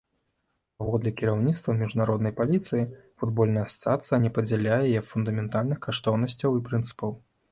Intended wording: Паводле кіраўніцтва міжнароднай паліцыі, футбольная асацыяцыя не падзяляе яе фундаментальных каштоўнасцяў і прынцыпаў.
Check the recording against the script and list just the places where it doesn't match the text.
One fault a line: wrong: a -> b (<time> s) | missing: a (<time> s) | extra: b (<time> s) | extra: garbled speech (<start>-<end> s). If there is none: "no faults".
no faults